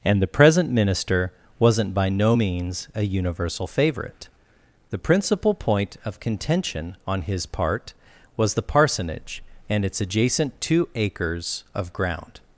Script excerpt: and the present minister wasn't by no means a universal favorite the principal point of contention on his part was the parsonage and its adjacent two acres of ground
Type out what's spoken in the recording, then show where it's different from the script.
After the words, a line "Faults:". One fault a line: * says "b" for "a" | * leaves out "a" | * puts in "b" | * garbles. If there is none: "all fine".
and the present minister wasn't by no means a universal favorite the principal point of contention on his part was the parsonage and its adjacent two acres of ground
Faults:
all fine